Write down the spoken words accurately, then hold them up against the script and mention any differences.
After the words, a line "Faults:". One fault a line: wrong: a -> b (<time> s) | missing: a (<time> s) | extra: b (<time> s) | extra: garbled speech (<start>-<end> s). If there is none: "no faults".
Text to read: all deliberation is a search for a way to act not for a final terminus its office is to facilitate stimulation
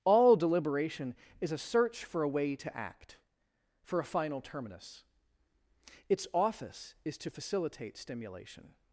all deliberation is a search for a way to act for a final terminus its office is to facilitate stimulation
Faults:
missing: not (3.2 s)